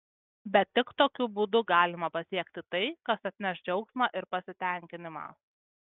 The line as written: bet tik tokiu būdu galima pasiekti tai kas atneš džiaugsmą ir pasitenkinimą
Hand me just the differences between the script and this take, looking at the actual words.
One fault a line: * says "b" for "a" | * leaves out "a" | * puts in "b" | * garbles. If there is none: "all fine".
all fine